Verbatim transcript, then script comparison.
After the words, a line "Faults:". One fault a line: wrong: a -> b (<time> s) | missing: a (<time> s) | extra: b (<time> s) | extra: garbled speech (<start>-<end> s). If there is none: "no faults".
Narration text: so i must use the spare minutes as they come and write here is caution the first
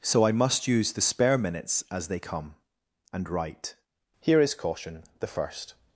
so i must use the spare minutes as they come and write here is caution the first
Faults:
no faults